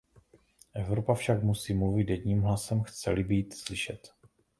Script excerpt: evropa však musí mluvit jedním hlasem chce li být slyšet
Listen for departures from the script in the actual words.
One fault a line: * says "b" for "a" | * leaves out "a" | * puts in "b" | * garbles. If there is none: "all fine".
all fine